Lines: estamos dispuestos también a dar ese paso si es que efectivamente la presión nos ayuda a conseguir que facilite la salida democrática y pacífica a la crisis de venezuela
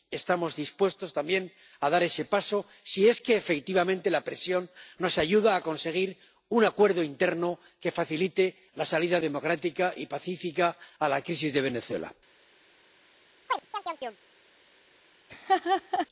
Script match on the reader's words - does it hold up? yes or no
no